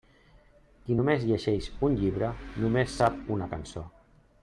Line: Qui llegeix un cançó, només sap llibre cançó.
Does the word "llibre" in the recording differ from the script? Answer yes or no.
yes